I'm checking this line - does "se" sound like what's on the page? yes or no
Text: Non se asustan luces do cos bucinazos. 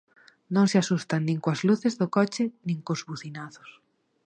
yes